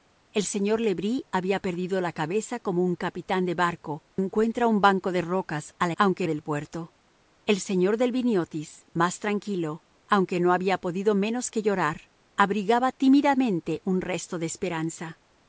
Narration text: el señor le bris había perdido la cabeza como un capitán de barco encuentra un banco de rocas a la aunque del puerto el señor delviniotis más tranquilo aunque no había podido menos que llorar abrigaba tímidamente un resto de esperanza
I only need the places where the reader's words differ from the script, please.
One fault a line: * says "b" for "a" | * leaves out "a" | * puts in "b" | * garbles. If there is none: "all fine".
all fine